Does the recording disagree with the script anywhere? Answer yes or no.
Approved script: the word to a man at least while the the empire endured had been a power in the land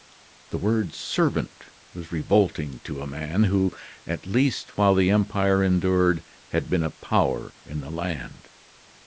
yes